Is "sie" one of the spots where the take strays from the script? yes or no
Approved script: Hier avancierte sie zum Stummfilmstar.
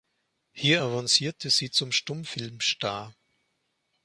no